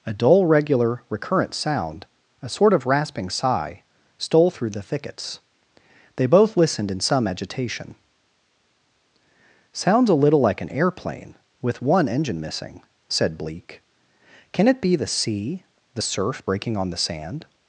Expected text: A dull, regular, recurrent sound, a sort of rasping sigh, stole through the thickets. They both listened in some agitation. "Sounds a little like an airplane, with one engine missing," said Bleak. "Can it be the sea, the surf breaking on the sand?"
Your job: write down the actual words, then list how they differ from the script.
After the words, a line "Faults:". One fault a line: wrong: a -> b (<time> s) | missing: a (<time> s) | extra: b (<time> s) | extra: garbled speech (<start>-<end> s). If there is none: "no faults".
A dull, regular, recurrent sound, a sort of rasping sigh, stole through the thickets. They both listened in some agitation. "Sounds a little like an airplane, with one engine missing," said Bleak. "Can it be the sea, the surf breaking on the sand?"
Faults:
no faults